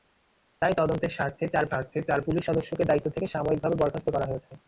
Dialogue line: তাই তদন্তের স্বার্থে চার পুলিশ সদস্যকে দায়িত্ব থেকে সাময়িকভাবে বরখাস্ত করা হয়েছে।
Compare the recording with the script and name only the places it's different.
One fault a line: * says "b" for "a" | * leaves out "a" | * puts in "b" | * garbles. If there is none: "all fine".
* puts in "স্বার্থে চার"